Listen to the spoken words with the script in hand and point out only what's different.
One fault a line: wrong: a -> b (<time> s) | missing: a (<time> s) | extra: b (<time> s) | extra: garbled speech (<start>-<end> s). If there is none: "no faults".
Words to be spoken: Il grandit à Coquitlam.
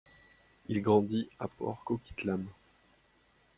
extra: Port (1.5 s)